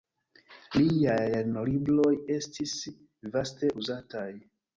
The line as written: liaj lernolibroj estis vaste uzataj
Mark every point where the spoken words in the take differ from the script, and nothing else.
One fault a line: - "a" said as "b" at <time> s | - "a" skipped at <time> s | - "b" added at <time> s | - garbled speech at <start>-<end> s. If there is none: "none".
none